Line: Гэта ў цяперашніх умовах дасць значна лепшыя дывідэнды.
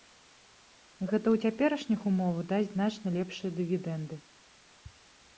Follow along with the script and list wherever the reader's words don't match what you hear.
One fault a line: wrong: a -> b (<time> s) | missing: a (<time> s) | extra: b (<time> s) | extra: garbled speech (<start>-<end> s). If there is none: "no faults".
no faults